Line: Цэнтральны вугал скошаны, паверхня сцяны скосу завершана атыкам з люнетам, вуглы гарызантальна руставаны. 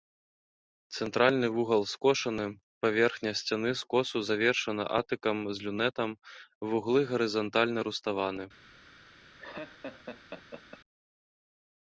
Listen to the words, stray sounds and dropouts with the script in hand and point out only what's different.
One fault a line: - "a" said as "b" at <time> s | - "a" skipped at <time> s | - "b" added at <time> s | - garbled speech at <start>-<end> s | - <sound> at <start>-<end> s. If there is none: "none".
- laugh at 9.4-10.8 s